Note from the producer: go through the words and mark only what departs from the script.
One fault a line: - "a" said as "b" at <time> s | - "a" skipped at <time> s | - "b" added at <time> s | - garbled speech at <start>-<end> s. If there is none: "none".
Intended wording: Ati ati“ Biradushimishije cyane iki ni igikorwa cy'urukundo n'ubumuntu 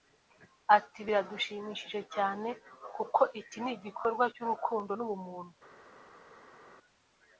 - "ati" skipped at 1.0 s
- "kuko" added at 3.0 s